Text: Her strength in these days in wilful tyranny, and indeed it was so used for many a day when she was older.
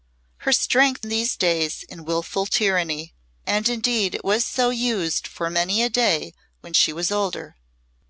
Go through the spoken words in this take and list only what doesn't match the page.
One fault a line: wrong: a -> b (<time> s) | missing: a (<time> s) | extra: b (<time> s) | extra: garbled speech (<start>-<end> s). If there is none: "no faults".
no faults